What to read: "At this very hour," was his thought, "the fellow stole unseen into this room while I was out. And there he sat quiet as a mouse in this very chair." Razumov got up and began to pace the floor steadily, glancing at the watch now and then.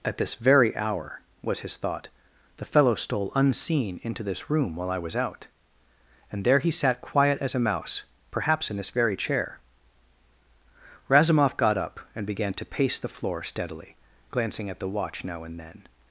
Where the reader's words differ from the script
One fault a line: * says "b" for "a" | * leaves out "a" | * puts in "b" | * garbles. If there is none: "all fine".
* puts in "perhaps"